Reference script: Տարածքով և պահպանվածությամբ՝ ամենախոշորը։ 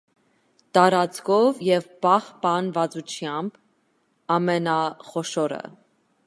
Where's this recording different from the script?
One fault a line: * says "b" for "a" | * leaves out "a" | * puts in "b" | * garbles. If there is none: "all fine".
all fine